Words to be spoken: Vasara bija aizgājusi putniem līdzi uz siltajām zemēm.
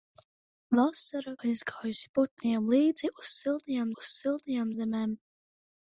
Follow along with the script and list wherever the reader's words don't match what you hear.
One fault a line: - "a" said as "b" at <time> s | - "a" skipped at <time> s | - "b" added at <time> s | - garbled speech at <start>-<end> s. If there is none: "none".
- "bija" skipped at 1.3 s
- "uz siltajām" added at 4.0 s